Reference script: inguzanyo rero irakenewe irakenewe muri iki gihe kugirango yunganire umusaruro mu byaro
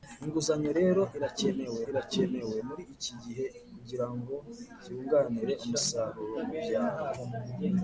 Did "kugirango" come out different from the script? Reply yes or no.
no